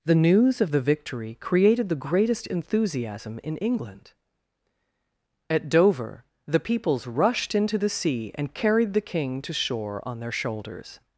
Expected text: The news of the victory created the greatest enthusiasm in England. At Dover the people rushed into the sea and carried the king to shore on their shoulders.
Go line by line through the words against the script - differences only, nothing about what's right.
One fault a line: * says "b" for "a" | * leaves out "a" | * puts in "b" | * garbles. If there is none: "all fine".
* says "peoples" for "people"